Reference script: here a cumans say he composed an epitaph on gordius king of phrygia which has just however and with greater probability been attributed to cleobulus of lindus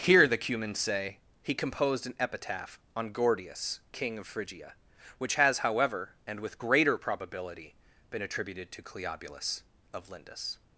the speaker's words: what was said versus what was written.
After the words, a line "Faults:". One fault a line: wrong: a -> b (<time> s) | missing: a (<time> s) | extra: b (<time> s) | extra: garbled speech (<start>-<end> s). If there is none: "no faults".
here the cumans say he composed an epitaph on gordius king of phrygia which has however and with greater probability been attributed to cleobulus of lindus
Faults:
wrong: a -> the (0.3 s)
missing: just (5.6 s)